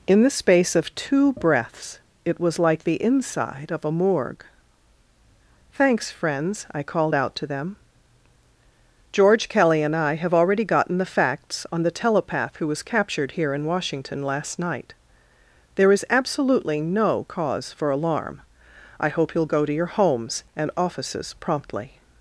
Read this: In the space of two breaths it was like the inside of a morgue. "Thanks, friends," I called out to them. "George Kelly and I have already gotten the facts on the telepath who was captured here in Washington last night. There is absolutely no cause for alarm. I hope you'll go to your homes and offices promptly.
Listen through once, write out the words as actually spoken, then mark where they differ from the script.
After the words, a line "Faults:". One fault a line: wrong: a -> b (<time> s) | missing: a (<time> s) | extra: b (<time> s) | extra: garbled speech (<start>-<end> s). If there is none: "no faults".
In the space of two breaths it was like the inside of a morgue. "Thanks, friends," I called out to them. "George Kelly and I have already gotten the facts on the telepath who was captured here in Washington last night. There is absolutely no cause for alarm. I hope you'll go to your homes and offices promptly.
Faults:
no faults